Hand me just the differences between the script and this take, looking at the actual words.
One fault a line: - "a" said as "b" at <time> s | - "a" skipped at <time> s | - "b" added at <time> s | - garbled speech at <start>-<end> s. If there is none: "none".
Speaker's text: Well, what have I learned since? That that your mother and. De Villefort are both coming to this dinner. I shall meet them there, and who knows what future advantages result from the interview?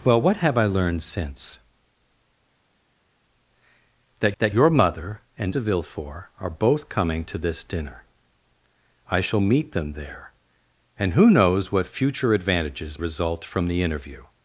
none